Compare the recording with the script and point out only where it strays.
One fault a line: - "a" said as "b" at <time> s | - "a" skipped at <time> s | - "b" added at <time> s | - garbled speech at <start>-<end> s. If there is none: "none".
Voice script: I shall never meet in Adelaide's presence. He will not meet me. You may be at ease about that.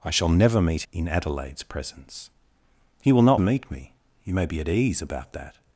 none